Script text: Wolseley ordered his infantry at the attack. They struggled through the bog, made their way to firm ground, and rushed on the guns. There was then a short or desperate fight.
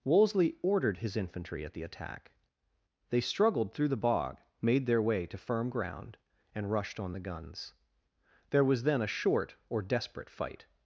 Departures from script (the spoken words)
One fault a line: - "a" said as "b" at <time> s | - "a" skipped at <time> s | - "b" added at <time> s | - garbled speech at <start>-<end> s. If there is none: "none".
none